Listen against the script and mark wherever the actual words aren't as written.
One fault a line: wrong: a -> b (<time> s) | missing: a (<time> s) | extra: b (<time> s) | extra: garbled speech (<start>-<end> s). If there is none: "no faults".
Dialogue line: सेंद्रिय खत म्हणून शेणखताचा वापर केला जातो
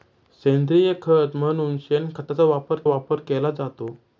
extra: वापर (2.8 s)